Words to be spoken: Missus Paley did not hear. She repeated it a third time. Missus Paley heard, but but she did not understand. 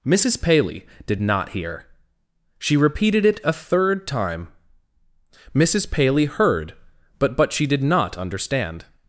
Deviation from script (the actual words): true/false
false